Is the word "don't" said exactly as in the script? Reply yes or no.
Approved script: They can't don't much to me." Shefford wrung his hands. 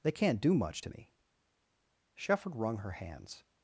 no